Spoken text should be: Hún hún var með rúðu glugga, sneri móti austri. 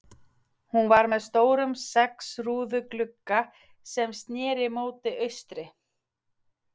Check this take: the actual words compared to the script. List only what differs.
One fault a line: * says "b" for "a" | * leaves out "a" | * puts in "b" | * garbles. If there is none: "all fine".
* leaves out "hún"
* puts in "stórum sex"
* puts in "sem"